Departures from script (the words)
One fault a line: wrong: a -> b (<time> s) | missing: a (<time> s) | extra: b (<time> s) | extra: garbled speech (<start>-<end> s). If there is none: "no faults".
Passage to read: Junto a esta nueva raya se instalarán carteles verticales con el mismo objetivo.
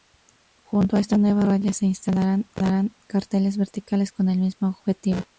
no faults